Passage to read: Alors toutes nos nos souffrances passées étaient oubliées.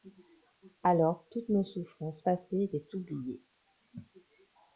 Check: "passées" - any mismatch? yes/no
no